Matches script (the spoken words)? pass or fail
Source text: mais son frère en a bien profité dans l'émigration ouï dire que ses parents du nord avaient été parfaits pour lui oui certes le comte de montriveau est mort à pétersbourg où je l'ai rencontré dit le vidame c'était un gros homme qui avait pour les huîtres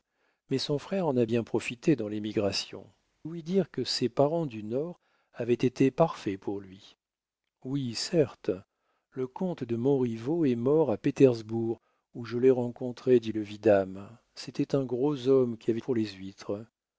pass